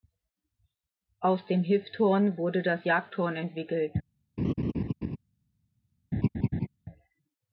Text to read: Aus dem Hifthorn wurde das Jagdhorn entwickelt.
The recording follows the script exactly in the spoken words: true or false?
true